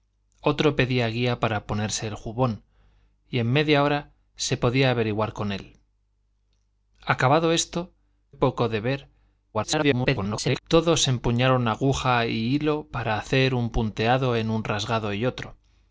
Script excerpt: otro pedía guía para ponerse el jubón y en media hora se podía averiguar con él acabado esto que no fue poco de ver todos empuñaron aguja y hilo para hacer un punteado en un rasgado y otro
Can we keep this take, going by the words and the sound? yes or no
no